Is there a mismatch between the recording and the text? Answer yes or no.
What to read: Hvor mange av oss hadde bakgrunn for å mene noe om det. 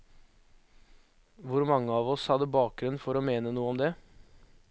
no